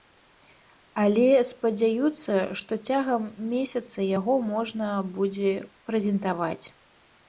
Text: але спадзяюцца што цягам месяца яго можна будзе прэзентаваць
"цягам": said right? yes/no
yes